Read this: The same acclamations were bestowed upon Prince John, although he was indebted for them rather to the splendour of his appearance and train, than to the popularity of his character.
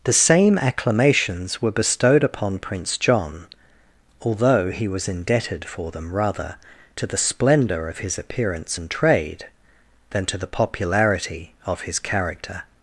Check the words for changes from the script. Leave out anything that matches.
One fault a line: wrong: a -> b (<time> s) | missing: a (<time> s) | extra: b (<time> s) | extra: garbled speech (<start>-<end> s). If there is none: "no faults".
wrong: train -> trade (8.9 s)